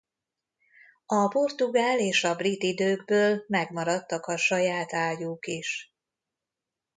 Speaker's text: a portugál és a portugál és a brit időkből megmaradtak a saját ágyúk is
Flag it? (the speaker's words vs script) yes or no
yes